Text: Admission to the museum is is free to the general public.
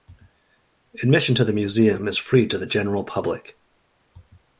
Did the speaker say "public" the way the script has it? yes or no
yes